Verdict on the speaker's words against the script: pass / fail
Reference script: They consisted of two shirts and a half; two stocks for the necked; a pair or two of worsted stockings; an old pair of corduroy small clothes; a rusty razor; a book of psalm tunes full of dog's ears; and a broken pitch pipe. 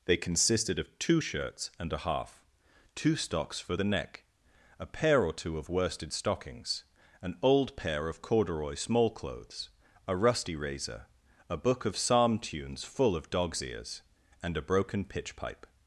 fail